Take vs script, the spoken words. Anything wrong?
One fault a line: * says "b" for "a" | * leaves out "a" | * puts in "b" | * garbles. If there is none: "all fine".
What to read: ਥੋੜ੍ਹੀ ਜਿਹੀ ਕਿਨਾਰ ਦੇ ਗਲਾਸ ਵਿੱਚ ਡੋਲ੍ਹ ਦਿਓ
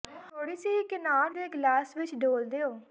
all fine